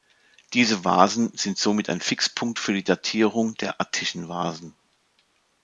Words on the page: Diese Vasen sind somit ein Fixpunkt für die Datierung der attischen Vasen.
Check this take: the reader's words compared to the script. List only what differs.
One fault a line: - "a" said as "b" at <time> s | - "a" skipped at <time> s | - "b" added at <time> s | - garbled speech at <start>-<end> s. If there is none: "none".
none